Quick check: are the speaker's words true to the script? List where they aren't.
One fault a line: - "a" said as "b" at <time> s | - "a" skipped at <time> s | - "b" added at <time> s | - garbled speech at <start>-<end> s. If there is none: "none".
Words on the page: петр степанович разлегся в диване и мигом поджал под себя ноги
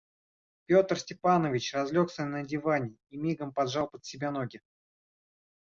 - "в" said as "на" at 2.2 s